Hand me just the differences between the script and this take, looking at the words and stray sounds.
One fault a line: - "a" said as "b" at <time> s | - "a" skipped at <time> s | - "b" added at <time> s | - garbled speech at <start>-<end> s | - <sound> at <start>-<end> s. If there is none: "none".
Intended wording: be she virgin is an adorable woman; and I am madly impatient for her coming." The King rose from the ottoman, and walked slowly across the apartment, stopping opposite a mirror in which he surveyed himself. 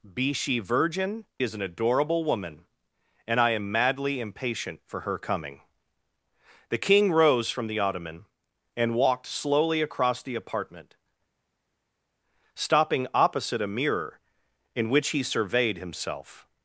none